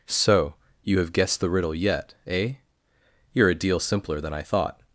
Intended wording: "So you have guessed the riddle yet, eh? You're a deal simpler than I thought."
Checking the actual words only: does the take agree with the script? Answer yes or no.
yes